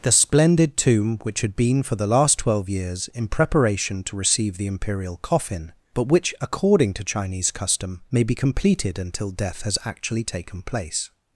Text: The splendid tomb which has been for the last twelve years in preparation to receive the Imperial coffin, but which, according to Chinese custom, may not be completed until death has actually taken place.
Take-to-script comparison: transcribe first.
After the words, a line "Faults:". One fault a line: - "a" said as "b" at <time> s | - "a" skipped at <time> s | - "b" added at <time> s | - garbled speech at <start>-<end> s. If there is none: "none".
The splendid tomb which had been for the last twelve years in preparation to receive the Imperial coffin, but which, according to Chinese custom, may be completed until death has actually taken place.
Faults:
- "has" said as "had" at 1.4 s
- "not" skipped at 8.2 s